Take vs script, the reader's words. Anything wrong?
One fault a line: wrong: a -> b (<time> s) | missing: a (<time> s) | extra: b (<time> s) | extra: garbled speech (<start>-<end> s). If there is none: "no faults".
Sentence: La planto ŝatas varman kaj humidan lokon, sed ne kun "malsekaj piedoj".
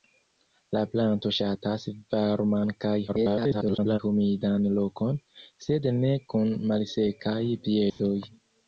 extra: garbled speech (3.1-4.0 s)